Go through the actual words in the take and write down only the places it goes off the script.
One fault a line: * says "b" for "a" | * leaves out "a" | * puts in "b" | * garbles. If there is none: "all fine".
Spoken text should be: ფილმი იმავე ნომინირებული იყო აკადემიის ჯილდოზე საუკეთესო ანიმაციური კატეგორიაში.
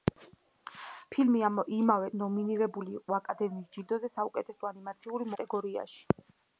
all fine